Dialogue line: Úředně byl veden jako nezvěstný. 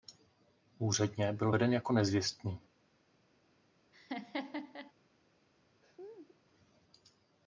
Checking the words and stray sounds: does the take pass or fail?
fail